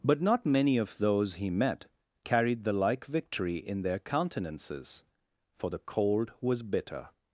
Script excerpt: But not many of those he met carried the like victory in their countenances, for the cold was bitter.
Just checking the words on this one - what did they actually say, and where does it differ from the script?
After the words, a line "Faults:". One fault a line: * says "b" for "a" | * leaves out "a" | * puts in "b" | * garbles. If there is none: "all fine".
But not many of those he met carried the like victory in their countenances, for the cold was bitter.
Faults:
all fine